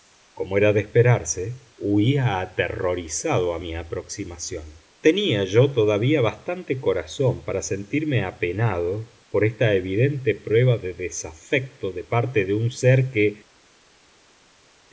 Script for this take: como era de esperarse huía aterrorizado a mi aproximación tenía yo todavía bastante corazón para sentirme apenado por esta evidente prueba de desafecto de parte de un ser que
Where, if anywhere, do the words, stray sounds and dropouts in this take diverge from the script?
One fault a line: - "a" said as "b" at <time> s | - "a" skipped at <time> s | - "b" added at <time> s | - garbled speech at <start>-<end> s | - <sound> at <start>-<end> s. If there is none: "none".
none